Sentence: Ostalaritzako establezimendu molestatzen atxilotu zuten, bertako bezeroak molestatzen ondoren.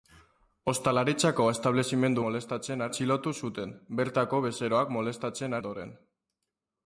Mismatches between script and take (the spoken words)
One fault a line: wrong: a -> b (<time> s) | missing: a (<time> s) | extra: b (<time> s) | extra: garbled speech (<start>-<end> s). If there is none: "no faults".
no faults